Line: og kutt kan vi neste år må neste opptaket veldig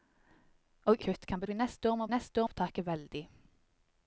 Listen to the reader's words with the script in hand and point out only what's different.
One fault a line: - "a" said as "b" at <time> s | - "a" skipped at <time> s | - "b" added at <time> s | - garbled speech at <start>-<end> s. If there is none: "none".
none